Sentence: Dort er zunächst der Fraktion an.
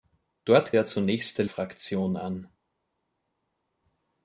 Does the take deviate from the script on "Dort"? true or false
false